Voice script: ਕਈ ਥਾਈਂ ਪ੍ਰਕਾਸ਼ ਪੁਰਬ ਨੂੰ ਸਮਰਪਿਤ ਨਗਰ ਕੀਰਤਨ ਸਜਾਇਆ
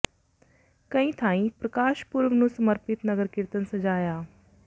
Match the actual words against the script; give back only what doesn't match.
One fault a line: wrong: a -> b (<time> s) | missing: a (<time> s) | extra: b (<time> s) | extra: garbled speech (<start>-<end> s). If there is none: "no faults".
no faults